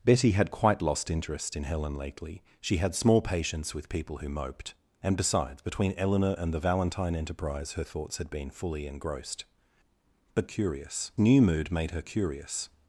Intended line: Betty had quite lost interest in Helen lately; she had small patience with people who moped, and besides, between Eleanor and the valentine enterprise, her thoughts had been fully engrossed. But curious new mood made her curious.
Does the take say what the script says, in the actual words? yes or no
yes